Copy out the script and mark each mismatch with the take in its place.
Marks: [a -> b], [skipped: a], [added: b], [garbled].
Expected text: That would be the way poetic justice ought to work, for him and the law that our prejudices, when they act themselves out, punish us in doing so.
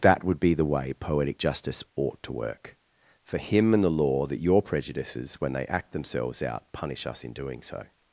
That would be the way poetic justice ought to work, for him and the law that [our -> your] prejudices, when they act themselves out, punish us in doing so.